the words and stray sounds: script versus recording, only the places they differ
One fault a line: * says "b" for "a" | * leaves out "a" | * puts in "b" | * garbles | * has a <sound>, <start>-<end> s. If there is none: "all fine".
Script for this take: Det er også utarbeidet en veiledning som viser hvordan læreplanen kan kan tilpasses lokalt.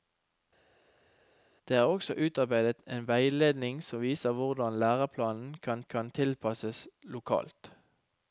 all fine